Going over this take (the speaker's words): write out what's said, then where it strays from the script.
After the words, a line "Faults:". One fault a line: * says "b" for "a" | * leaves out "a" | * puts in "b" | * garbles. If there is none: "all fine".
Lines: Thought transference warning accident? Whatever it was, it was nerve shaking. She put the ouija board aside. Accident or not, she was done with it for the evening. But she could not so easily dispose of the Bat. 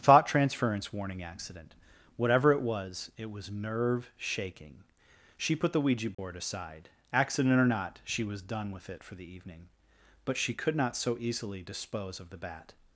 Thought transference warning accident? Whatever it was, it was nerve shaking. She put the ouija board aside. Accident or not, she was done with it for the evening. But she could not so easily dispose of the Bat.
Faults:
all fine